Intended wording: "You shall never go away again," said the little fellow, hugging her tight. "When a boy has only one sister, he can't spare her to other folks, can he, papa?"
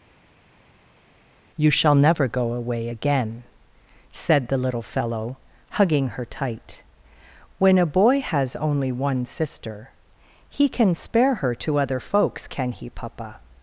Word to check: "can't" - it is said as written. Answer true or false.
false